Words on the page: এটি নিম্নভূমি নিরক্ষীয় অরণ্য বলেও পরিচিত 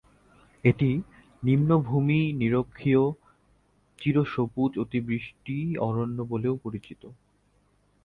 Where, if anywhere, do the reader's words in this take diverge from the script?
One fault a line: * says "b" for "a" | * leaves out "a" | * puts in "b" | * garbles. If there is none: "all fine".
* puts in "চিরসবুজ অতিবৃষ্টি"